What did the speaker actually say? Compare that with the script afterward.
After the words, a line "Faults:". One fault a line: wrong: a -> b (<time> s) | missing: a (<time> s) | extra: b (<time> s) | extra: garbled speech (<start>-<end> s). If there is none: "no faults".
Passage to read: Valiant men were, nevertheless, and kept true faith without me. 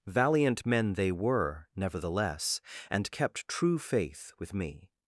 Valiant men they were, nevertheless, and kept true faith with me.
Faults:
extra: they (0.9 s)
wrong: without -> with (4.4 s)